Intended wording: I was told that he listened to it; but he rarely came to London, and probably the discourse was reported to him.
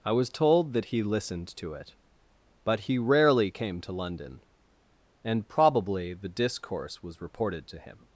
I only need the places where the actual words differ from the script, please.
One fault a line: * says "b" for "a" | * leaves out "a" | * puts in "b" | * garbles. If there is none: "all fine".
all fine